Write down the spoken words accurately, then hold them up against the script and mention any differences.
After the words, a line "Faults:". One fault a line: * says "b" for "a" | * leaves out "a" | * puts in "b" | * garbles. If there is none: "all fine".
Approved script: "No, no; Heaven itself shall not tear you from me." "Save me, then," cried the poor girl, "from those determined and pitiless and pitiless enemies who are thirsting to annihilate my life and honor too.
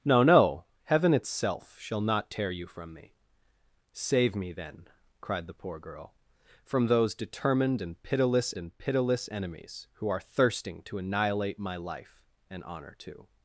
"No, no; Heaven itself shall not tear you from me." "Save me, then," cried the poor girl, "from those determined and pitiless and pitiless enemies who are thirsting to annihilate my life and honor too.
Faults:
all fine